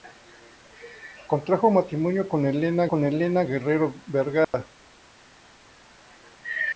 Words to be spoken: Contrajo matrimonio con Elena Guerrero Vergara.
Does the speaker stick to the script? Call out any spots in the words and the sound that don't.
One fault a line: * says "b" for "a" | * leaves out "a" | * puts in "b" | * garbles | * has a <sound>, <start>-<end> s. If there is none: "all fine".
* puts in "con Elena"
* has a dropout, 4.4-4.5 s